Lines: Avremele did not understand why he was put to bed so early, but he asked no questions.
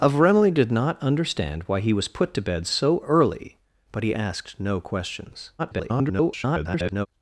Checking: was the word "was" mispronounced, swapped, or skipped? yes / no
no